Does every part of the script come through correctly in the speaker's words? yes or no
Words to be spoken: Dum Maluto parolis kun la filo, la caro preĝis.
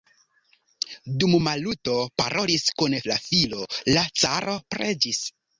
yes